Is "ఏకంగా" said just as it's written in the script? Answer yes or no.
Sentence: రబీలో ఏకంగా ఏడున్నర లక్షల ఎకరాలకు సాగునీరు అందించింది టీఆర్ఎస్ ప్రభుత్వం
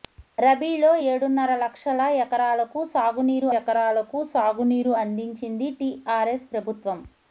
no